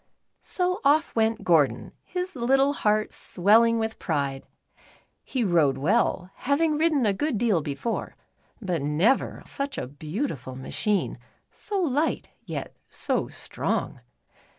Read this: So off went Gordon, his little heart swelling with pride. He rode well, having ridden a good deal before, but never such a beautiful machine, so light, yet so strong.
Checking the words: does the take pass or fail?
pass